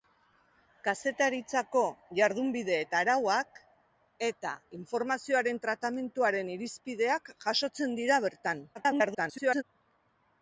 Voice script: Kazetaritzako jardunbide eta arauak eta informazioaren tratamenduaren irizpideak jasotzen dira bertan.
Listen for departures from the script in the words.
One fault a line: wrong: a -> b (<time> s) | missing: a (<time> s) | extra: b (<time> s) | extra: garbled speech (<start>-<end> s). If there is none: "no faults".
extra: garbled speech (8.7-9.6 s)